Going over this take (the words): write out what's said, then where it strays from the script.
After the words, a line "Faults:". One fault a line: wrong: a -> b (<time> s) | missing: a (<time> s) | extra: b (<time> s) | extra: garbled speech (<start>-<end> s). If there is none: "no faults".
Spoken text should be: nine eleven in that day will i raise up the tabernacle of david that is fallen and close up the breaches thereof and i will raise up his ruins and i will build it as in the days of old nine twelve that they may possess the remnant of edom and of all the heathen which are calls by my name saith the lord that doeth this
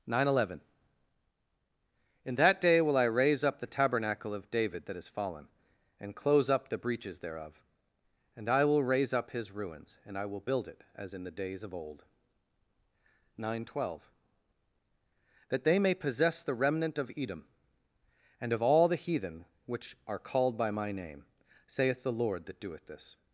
nine eleven in that day will i raise up the tabernacle of david that is fallen and close up the breaches thereof and i will raise up his ruins and i will build it as in the days of old nine twelve that they may possess the remnant of edom and of all the heathen which are called by my name saith the lord that doeth this
Faults:
wrong: calls -> called (20.2 s)